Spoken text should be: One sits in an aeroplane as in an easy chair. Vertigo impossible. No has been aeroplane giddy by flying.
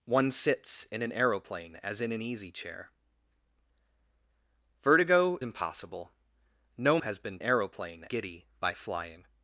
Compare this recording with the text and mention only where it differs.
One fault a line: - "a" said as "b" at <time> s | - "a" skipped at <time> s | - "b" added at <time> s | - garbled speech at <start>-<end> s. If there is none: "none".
none